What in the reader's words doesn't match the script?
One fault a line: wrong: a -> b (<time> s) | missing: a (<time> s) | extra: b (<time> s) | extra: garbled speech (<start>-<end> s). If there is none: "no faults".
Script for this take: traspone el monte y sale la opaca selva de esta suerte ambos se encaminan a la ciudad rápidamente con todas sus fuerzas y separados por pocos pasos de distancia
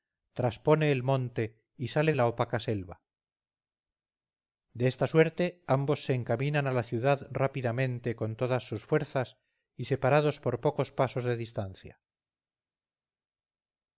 no faults